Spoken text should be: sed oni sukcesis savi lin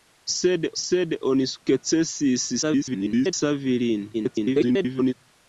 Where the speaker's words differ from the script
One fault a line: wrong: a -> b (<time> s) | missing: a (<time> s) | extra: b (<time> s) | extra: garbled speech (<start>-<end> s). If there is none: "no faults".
extra: sed (0.8 s)
extra: garbled speech (2.6-3.3 s)
extra: garbled speech (4.1-5.1 s)